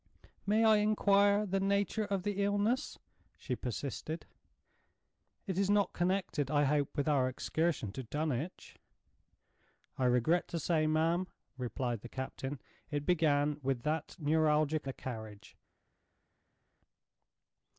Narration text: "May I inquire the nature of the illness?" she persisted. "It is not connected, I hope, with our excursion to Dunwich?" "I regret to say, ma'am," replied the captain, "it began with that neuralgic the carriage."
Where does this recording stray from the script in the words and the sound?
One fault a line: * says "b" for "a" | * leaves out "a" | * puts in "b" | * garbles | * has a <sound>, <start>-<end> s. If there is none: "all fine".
all fine